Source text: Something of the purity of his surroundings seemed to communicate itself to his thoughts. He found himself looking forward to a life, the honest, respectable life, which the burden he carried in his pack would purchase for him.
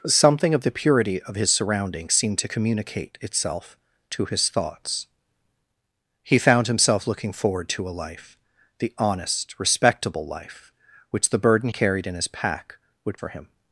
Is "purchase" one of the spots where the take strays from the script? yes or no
yes